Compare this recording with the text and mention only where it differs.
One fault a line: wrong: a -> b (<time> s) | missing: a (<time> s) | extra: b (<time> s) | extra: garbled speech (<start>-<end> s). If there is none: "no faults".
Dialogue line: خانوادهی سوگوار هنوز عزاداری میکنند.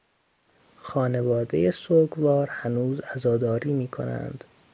no faults